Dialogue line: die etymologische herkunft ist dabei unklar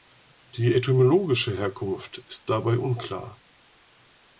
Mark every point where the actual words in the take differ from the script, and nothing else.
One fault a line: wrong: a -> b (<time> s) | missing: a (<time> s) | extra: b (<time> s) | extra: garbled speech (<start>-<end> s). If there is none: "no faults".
no faults